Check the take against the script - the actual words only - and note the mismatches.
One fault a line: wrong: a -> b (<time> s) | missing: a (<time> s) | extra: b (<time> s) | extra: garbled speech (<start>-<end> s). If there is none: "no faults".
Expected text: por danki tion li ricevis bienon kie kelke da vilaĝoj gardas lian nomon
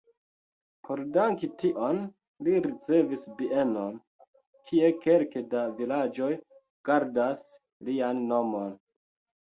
no faults